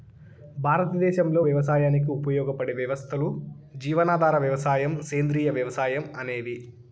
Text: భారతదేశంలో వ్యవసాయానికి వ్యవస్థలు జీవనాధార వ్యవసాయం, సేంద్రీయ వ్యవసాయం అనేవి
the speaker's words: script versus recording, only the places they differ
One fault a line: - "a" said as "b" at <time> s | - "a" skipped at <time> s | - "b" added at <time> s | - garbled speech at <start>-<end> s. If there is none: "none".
- "ఉపయోగపడే" added at 2.2 s